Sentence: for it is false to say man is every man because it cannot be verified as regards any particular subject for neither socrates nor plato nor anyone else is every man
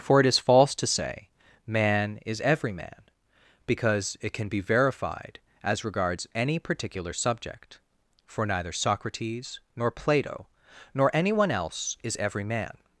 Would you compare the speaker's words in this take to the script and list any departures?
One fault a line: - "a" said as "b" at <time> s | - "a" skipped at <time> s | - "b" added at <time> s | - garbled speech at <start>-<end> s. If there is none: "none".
- "cannot" said as "can" at 4.3 s